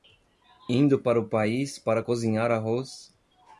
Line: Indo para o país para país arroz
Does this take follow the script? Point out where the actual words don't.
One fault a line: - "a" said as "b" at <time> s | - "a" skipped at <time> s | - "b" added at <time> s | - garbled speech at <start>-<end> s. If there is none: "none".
- "país" said as "cozinhar" at 2.0 s